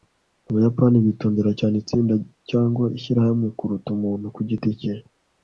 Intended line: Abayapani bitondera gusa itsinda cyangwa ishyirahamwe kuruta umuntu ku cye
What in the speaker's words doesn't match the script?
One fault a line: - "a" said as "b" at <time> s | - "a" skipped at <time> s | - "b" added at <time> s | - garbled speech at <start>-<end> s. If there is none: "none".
- "gusa" said as "cyane" at 1.6 s
- "giti" added at 4.5 s